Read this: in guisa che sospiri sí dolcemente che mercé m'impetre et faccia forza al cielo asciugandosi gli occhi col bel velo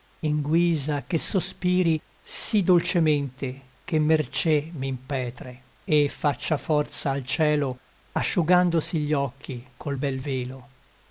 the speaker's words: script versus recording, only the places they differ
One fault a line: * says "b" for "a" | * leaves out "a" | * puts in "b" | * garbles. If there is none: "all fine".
all fine